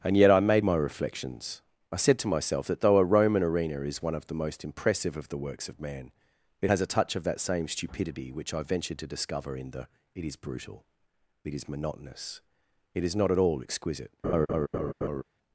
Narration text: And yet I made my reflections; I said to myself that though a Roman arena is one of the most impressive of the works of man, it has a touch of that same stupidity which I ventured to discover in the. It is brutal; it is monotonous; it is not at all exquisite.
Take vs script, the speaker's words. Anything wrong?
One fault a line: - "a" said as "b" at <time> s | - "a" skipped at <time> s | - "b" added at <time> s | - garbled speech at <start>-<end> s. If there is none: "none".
none